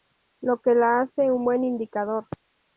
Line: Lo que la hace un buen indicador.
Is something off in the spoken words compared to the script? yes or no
no